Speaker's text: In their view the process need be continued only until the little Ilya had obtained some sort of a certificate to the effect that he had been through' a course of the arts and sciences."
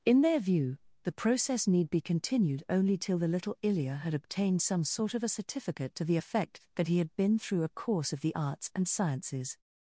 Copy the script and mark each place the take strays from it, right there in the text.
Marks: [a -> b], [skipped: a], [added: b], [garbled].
In their view the process need be continued only [until -> till] the little Ilya had obtained some sort of a certificate to the effect that he had been through' a course of the arts and sciences."